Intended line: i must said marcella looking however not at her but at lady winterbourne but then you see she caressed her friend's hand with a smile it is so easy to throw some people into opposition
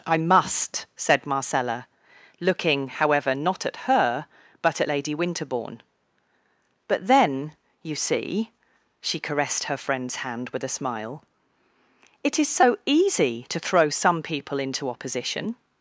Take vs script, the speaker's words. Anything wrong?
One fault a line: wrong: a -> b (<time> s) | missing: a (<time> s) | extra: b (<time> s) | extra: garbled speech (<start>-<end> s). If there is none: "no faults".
no faults